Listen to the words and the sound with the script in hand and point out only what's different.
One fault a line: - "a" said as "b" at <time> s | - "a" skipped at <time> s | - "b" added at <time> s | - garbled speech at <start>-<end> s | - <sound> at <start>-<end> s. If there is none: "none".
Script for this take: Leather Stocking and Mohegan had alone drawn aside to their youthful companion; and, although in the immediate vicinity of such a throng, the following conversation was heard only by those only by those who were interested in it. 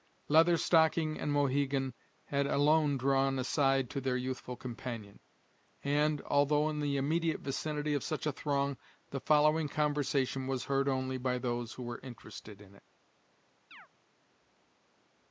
- "only by those" skipped at 11.7 s
- chirp at 13.7-13.9 s